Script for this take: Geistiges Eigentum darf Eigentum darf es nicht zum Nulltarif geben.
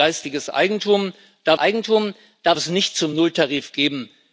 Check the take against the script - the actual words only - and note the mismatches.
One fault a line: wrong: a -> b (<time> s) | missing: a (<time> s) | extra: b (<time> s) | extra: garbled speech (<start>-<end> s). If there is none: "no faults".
no faults